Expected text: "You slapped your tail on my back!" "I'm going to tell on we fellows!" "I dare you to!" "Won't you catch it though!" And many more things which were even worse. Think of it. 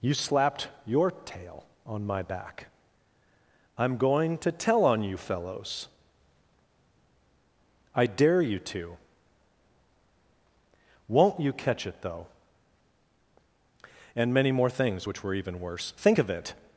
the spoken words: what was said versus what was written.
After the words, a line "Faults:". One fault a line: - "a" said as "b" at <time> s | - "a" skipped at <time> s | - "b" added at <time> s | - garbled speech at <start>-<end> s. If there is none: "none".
"You slapped your tail on my back!" "I'm going to tell on you fellows!" "I dare you to!" "Won't you catch it though!" And many more things which were even worse. Think of it.
Faults:
- "we" said as "you" at 5.0 s